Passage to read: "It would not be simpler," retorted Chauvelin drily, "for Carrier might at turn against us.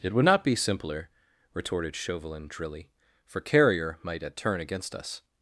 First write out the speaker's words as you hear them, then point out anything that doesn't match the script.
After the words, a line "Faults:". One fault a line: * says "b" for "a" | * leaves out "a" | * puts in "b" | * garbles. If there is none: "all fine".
"It would not be simpler," retorted Chauvelin drily, "for Carrier might at turn against us.
Faults:
all fine